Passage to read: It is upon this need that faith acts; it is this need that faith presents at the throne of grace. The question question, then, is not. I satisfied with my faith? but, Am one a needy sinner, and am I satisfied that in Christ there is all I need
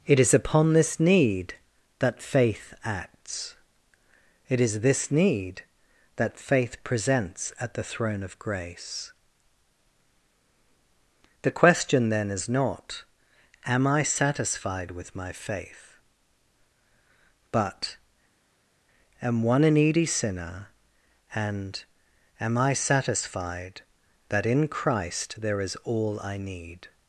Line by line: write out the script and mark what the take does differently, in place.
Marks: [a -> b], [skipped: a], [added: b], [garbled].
It is upon this need that faith acts; it is this need that faith presents at the throne of grace. The question [skipped: question,] then, is not. [added: Am] I satisfied with my faith? but, Am one a needy sinner, and am I satisfied that in Christ there is all I need